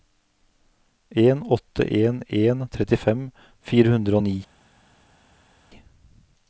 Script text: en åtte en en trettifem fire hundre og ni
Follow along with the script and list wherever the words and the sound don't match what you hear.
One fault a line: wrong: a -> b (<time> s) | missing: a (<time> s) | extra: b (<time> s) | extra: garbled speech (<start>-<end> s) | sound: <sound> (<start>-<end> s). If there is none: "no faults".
no faults